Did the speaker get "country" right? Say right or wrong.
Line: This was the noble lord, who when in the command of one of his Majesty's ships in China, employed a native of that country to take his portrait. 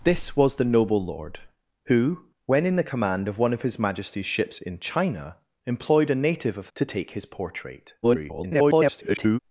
wrong